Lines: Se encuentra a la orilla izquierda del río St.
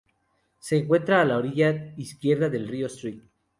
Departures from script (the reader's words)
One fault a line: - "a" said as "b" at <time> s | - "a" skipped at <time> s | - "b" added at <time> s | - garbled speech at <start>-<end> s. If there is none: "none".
none